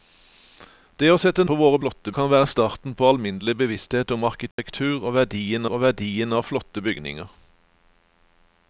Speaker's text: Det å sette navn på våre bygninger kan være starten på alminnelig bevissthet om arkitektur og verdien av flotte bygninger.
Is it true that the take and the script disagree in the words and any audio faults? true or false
true